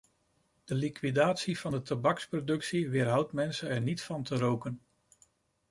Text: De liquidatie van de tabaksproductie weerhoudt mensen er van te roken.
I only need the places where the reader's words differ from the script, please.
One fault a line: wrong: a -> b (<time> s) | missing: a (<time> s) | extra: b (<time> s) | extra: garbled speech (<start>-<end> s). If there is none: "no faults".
extra: niet (3.8 s)